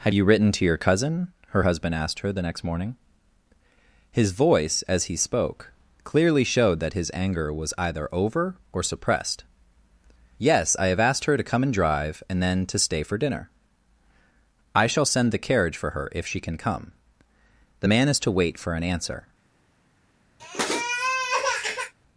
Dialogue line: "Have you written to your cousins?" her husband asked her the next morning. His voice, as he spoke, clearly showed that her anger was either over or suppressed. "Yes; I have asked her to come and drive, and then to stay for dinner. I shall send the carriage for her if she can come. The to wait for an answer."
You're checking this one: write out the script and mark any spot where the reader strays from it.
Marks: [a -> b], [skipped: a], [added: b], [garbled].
"Have you written to your [cousins?" -> cousin] her husband asked her the next morning. His voice, as he spoke, clearly showed that [her -> his] anger was either over or suppressed. "Yes; I have asked her to come and drive, and then to stay for dinner. I shall send the carriage for her if she can come. The [added: man is] to wait for an answer."